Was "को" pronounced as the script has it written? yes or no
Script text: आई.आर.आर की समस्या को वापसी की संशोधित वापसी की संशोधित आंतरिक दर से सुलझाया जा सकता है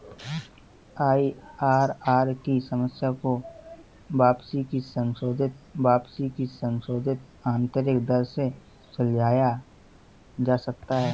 yes